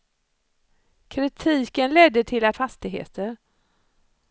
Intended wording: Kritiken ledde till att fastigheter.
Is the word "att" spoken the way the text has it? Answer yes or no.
yes